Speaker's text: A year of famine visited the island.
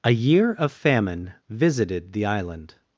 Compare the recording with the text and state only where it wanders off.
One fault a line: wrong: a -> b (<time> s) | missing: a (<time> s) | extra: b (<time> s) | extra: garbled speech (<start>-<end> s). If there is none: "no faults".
no faults